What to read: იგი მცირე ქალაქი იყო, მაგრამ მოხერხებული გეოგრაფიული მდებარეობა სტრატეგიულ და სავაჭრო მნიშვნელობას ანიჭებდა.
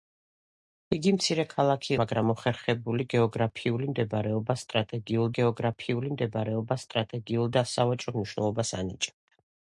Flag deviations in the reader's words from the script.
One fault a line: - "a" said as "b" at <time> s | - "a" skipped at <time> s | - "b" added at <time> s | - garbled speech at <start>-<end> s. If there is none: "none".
- "იყო" skipped at 1.9 s
- "გეოგრაფიული მდებარეობა სტრატეგიულ" added at 5.4 s